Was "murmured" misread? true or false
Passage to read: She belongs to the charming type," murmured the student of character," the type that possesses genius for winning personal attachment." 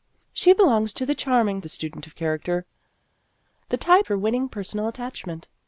true